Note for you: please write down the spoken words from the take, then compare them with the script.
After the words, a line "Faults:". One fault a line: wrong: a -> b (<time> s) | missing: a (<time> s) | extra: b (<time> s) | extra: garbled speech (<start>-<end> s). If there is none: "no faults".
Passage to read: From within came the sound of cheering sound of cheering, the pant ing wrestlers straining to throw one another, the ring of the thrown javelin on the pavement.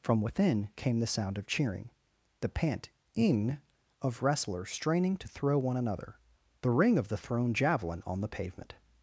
From within came the sound of cheering, the pant ing of wrestlers straining to throw one another, the ring of the thrown javelin on the pavement.
Faults:
missing: sound of cheering (1.9 s)
extra: of (4.0 s)